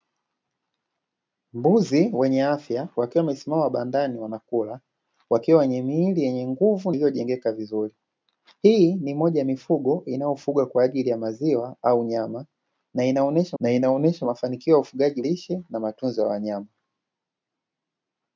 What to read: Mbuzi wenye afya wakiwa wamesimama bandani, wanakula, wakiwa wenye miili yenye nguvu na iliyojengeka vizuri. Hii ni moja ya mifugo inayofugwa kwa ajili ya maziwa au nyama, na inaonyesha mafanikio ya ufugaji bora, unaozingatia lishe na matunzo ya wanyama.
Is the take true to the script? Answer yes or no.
no